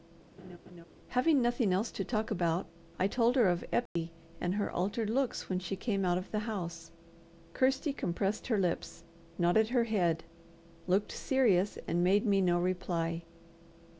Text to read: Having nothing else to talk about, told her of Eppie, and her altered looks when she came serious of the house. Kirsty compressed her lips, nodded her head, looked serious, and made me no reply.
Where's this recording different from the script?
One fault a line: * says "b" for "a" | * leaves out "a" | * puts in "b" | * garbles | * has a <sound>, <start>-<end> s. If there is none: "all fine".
* has a laugh, 0.4-0.9 s
* puts in "I"
* has a dropout, 3.9-4.0 s
* says "out" for "serious"